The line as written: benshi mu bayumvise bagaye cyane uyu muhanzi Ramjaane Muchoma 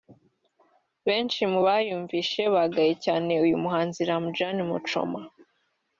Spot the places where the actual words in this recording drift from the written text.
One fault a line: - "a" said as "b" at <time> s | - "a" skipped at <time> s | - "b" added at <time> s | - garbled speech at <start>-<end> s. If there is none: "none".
none